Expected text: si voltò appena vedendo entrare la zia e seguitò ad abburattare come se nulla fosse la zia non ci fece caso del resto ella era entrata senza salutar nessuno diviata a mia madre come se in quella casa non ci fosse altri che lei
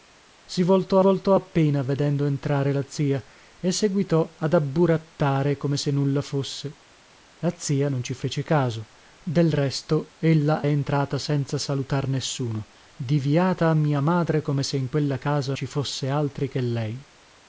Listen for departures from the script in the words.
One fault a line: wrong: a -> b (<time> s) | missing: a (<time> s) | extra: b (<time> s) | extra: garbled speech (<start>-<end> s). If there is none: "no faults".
extra: voltò (1.0 s)
missing: era (10.7 s)
missing: non (15.6 s)